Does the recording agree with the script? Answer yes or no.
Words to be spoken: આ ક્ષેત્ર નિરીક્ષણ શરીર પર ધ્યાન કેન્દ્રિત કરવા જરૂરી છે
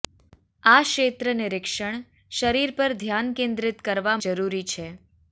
yes